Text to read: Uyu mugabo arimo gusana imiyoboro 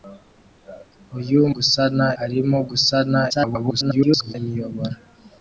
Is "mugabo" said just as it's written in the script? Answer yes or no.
no